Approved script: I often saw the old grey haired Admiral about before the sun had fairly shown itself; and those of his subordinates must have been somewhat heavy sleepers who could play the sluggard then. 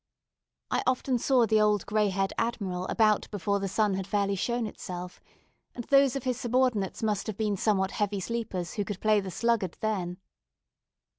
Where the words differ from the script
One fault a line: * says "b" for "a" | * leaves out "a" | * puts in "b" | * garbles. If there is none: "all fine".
all fine